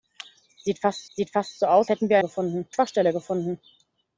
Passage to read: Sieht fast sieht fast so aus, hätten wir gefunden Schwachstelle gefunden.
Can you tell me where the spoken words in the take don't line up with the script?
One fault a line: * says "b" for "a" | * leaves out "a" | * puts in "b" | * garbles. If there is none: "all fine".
all fine